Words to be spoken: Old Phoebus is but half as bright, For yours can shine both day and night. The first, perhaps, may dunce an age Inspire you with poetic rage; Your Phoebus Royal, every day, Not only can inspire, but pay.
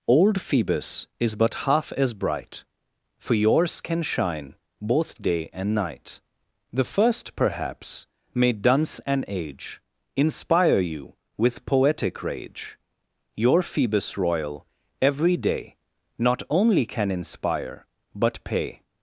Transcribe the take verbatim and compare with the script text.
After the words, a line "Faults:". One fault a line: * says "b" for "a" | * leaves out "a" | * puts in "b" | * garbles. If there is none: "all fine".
Old Phoebus is but half as bright, For yours can shine both day and night. The first, perhaps, may dunce an age Inspire you with poetic rage; Your Phoebus Royal, every day, Not only can inspire, but pay.
Faults:
all fine